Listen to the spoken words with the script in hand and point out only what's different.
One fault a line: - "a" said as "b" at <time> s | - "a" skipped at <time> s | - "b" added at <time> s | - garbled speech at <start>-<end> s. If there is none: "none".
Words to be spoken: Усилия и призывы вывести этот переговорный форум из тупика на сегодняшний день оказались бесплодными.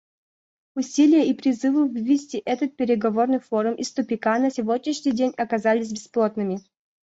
none